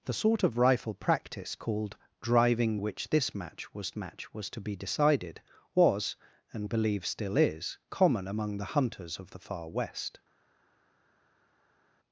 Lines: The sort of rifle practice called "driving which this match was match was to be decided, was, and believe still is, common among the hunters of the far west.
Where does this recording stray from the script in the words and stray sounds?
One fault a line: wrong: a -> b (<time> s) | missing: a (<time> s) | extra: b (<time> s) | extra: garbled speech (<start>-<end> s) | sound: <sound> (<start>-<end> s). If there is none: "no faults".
no faults